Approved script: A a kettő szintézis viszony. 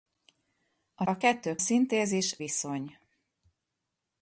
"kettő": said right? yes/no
yes